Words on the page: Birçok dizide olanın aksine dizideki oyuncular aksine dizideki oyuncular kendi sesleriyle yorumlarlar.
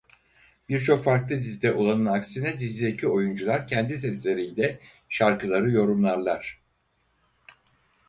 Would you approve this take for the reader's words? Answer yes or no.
no